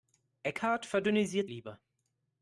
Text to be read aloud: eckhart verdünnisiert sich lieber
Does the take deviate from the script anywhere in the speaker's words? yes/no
yes